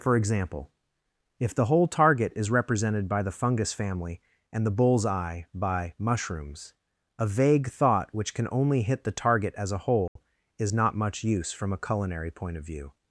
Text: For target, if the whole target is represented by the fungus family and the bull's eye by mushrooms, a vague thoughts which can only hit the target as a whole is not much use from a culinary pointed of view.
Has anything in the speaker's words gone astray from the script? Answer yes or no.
yes